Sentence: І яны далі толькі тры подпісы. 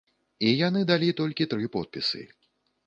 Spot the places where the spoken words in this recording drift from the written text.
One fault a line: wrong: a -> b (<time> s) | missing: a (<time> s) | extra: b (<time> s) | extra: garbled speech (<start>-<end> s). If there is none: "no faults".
no faults